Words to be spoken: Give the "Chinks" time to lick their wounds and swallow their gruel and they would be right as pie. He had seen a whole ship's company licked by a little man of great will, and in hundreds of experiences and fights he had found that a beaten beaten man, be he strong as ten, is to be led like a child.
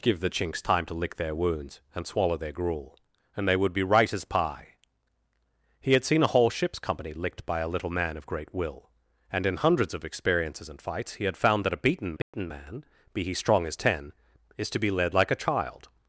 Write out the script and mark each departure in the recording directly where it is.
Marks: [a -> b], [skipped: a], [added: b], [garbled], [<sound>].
Give the "Chinks" time to lick their wounds and swallow their gruel and they would be right as pie. He had seen a whole ship's company licked by a little man of great will, and in hundreds of experiences and fights he had found that a beaten beaten [dropout] man, be he strong as ten, is to be led like a child.